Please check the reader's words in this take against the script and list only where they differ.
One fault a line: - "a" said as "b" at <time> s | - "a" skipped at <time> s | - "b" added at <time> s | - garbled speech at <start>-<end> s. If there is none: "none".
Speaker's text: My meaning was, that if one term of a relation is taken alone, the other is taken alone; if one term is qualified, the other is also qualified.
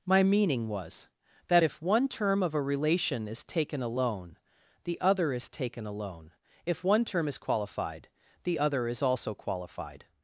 none